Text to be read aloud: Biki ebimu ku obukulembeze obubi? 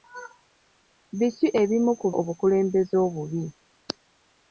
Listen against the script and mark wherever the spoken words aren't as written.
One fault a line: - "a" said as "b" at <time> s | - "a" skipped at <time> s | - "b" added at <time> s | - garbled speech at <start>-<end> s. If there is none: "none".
none